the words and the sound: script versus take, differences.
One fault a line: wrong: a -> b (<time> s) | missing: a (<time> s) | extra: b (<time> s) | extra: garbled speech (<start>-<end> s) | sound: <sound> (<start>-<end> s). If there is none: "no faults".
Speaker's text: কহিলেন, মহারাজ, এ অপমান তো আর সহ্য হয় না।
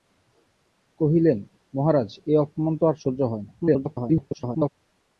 extra: garbled speech (3.6-4.7 s)